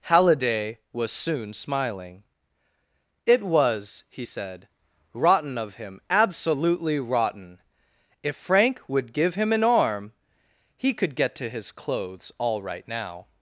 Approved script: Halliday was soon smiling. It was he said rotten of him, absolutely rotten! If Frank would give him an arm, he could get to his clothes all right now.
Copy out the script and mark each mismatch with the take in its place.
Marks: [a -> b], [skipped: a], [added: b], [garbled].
Halliday was soon smiling. It was he said rotten of him, absolutely rotten! If Frank would give him an arm, he could get to his clothes all right now.